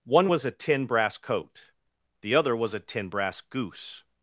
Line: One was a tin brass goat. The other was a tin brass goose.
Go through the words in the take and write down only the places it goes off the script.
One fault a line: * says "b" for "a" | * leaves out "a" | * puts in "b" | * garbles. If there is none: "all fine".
* says "coat" for "goat"